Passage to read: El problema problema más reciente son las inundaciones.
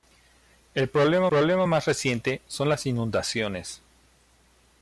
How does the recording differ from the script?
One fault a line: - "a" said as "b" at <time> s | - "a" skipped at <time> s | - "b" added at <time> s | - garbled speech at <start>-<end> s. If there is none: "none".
none